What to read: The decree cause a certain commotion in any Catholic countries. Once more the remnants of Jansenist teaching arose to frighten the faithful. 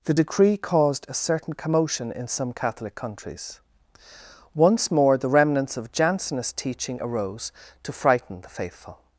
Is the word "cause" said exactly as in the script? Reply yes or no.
no